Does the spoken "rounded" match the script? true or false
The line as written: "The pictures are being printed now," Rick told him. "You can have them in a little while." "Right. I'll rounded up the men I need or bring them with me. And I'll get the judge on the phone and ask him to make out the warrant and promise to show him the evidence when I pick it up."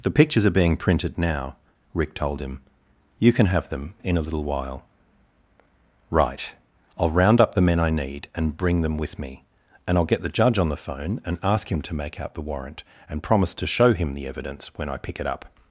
false